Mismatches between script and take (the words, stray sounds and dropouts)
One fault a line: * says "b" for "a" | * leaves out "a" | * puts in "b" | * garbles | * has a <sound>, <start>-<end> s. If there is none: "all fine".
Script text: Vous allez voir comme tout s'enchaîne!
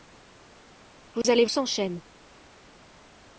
* has a dropout, 1.2-1.2 s
* leaves out "voir comme tout"